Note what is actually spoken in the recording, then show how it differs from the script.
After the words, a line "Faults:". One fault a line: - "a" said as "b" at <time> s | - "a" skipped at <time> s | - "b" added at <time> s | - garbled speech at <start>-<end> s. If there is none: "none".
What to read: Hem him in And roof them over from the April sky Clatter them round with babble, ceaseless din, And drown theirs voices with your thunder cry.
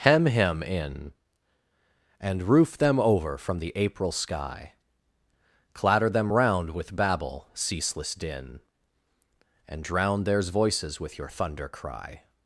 Hem him in And roof them over from the April sky Clatter them round with babble, ceaseless din, And drown theirs voices with your thunder cry.
Faults:
none